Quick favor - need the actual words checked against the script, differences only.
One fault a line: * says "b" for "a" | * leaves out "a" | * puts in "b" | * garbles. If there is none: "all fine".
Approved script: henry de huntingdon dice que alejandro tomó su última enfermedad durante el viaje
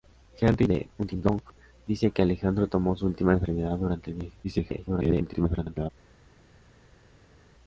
* garbles